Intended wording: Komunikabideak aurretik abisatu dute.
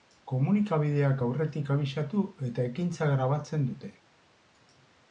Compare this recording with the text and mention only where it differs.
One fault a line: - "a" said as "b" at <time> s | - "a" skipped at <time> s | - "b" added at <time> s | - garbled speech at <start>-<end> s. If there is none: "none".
- "eta ekintza grabatzen" added at 2.5 s